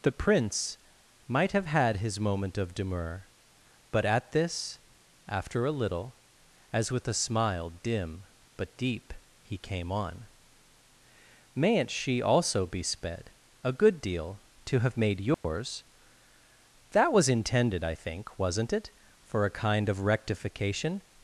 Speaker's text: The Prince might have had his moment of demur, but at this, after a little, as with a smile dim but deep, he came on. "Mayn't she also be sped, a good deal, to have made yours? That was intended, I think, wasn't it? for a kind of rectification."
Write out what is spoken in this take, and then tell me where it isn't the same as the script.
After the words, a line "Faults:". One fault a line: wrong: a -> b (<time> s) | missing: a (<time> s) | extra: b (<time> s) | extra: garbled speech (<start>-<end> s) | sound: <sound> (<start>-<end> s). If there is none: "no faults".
The Prince might have had his moment of demur, but at this, after a little, as with a smile dim but deep, he came on. "Mayn't she also be sped, a good deal, to have made yours? That was intended, I think, wasn't it? for a kind of rectification."
Faults:
sound: dropout (15.3-15.4 s)